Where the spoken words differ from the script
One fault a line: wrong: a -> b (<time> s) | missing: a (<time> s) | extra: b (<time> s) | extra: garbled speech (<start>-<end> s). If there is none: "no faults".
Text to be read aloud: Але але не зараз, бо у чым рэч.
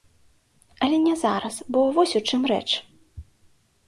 missing: але (1.0 s)
extra: вось (2.0 s)